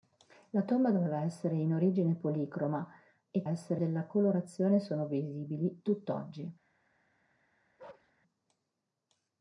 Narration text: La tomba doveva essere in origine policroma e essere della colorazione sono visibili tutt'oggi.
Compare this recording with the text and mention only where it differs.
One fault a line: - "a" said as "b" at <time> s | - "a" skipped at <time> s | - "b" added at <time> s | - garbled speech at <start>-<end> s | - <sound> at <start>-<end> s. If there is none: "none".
- bark at 7.8-8.1 s